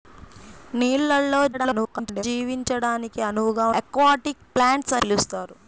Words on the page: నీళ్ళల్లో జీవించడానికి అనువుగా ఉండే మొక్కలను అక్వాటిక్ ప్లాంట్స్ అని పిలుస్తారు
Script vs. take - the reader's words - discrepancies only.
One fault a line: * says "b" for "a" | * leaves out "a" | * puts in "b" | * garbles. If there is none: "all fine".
* garbles
* leaves out "ఉండే మొక్కలను"
* leaves out "అని"